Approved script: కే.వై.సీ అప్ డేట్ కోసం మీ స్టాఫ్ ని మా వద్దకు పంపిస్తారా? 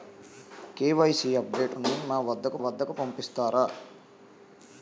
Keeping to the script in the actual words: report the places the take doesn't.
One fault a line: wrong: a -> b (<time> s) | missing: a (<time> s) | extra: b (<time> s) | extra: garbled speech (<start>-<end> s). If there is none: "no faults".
missing: కోసం మీ స్టాఫ్ (1.8 s)
extra: వద్దకు (2.6 s)